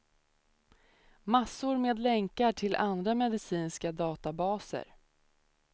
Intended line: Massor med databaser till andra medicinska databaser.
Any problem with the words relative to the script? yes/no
yes